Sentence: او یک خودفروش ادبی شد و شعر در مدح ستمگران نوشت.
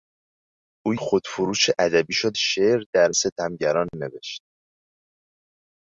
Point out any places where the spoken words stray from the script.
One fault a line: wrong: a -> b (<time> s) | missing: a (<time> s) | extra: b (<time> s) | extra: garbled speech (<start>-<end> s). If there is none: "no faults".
missing: یک (0.9 s)
missing: و (2.3 s)
missing: مدح (3.1 s)